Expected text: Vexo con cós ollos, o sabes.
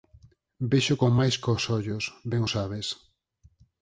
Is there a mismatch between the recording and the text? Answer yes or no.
yes